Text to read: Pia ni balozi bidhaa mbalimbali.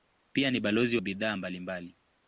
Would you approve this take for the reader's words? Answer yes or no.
yes